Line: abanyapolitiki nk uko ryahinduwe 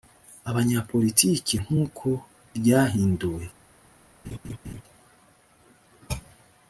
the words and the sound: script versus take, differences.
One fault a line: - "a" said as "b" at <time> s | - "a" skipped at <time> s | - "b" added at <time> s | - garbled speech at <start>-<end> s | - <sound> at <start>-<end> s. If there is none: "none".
- laugh at 4.2-4.8 s